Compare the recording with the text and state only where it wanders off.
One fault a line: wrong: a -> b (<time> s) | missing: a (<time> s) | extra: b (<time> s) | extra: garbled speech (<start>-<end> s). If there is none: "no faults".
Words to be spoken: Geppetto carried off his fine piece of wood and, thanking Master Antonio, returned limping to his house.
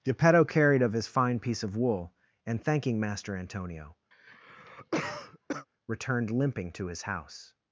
wrong: off -> of (0.8 s)
wrong: wood -> wool (1.8 s)